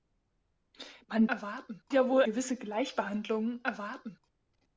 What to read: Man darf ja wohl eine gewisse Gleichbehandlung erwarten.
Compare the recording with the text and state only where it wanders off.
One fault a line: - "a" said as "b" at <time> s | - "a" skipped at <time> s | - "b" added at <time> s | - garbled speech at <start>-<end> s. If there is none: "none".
- "darf" said as "erwarten" at 1.3 s
- "eine" skipped at 2.2 s